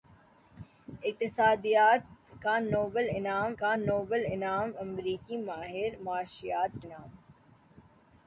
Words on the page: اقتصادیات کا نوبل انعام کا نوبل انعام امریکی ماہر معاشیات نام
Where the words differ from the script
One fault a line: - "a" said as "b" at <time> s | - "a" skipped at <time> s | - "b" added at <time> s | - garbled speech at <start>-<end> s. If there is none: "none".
none